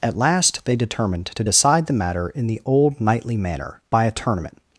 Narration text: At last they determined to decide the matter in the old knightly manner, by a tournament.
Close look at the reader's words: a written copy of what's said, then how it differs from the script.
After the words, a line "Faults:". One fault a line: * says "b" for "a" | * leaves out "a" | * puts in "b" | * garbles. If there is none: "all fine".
At last they determined to decide the matter in the old knightly manner, by a tournament.
Faults:
all fine